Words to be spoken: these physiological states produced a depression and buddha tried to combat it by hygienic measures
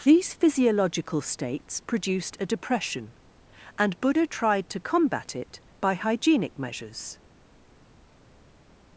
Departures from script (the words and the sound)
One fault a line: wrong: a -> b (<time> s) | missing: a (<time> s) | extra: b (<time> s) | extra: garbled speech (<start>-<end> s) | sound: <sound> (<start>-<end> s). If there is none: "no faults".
no faults